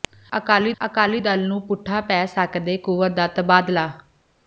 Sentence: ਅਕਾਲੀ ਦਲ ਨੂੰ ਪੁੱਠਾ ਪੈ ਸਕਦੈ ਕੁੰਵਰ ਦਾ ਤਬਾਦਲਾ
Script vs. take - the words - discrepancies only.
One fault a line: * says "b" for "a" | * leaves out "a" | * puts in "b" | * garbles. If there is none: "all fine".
* puts in "ਅਕਾਲੀ"